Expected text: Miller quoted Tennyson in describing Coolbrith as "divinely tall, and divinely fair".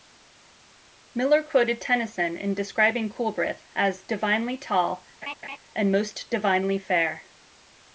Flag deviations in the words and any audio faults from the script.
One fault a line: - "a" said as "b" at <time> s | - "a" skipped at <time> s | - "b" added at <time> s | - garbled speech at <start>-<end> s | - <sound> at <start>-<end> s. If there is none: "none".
- laugh at 5.2-5.6 s
- "most" added at 5.9 s